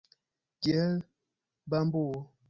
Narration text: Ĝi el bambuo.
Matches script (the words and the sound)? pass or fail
pass